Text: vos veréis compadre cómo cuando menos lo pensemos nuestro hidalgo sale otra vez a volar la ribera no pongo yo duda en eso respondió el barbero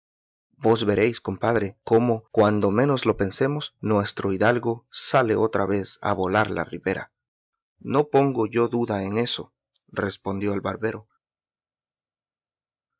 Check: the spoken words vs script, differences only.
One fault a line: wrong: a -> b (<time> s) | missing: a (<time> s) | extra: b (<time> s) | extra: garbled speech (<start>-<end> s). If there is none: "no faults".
no faults